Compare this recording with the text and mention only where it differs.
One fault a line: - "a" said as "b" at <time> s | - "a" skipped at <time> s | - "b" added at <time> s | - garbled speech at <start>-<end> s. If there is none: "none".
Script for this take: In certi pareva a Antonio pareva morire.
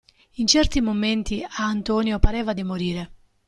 - "pareva" said as "momenti" at 0.8 s
- "di" added at 2.5 s